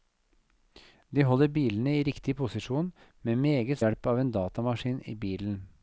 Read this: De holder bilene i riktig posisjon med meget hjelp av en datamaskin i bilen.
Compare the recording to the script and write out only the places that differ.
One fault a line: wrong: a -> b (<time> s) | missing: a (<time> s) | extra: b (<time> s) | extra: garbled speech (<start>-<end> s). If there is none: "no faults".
no faults